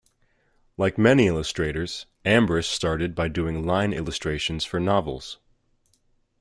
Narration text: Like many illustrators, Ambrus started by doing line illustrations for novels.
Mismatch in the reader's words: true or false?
false